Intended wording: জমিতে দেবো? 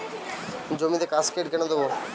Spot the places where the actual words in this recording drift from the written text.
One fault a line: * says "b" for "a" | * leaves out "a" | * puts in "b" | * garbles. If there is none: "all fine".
* puts in "কাসকেড কেন"